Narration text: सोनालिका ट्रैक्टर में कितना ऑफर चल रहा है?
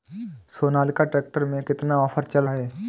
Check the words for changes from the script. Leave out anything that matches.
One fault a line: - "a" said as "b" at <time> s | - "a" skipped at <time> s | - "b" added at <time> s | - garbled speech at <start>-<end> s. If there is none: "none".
- "रहा" skipped at 2.4 s